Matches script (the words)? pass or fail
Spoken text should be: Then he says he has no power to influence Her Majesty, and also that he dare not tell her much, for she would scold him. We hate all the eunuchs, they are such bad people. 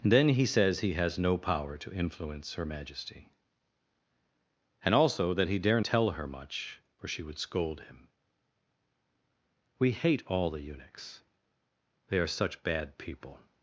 fail